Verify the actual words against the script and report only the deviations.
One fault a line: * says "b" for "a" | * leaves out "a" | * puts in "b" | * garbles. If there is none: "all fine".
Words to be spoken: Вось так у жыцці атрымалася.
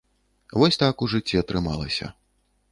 all fine